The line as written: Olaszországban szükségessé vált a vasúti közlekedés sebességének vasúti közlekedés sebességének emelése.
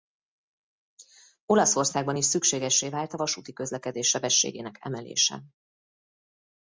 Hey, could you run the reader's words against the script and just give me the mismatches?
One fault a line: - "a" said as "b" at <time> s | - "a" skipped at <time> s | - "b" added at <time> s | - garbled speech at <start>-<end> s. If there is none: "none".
- "is" added at 2.2 s
- "vasúti közlekedés sebességének" skipped at 4.8 s